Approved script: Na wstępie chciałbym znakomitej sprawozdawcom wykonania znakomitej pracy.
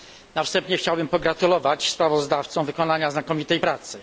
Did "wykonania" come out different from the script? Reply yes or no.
no